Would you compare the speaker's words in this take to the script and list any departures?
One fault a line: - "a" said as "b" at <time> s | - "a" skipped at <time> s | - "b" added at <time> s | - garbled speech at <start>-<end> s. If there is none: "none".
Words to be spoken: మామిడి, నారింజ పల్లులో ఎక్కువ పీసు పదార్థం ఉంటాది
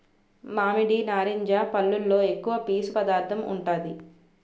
none